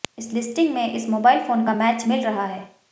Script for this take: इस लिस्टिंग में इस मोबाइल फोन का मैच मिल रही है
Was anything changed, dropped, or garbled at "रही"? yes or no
yes